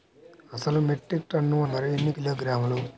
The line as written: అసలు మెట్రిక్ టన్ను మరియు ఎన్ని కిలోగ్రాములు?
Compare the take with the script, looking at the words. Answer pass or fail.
pass